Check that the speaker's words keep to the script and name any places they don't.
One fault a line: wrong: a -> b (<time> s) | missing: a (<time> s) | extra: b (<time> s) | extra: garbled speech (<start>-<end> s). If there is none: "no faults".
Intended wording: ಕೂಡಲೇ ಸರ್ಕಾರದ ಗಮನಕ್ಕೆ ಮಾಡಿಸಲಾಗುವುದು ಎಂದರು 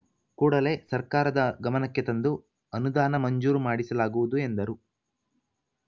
extra: ತಂದು ಅನುದಾನ ಮಂಜೂರು (2.0 s)